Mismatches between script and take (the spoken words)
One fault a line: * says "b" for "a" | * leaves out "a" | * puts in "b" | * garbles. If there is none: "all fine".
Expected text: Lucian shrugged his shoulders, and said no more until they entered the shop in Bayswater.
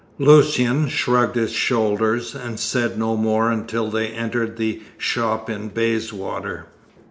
all fine